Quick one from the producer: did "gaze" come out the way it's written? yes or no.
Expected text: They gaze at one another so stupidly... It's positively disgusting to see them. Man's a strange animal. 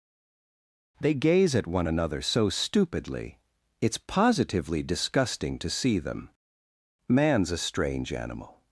yes